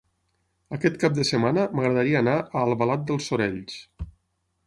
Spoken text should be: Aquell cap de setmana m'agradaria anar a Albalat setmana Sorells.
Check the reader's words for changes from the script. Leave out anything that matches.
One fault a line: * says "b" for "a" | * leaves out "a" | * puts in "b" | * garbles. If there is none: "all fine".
* says "Aquest" for "Aquell"
* says "dels" for "setmana"